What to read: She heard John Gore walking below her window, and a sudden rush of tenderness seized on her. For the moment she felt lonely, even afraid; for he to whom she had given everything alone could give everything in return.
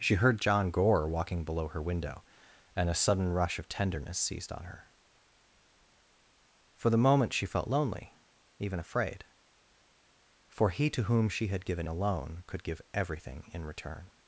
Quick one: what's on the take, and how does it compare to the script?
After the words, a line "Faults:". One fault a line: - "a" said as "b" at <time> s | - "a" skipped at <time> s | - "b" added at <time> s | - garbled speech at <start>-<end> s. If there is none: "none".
She heard John Gore walking below her window, and a sudden rush of tenderness seized on her. For the moment she felt lonely, even afraid; for he to whom she had given alone could give everything in return.
Faults:
- "everything" skipped at 11.9 s